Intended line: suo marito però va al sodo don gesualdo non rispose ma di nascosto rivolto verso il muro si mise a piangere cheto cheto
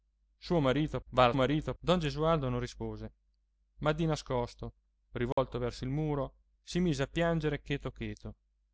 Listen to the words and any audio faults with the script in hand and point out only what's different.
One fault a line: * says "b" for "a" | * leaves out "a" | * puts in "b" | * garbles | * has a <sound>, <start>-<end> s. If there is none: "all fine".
* leaves out "però"
* says "marito" for "sodo"
* has a dropout, 5.3-5.4 s